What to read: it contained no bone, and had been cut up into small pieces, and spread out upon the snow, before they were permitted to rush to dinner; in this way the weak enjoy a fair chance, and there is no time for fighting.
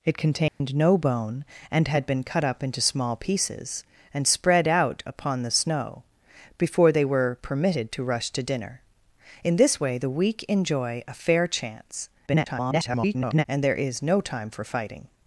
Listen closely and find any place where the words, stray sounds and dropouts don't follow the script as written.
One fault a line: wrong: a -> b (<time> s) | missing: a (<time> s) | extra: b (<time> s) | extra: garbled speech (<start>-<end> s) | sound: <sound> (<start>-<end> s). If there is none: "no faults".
sound: dropout (0.5-0.6 s)
extra: garbled speech (12.3-13.5 s)